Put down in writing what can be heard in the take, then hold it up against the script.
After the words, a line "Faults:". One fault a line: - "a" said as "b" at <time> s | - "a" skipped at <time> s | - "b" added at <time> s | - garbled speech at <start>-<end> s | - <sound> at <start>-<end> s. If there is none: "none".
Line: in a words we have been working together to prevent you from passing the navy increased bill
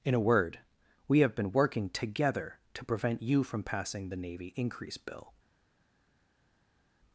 in a word we have been working together to prevent you from passing the navy increase bill
Faults:
- "words" said as "word" at 0.2 s
- "increased" said as "increase" at 4.5 s